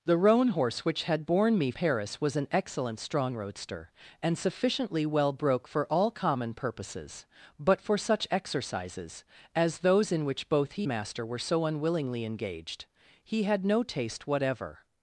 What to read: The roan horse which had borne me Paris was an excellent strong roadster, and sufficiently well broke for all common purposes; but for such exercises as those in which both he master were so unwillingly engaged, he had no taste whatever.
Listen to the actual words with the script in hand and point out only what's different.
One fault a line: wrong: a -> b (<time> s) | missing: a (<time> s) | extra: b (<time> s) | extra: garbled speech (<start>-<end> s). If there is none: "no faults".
no faults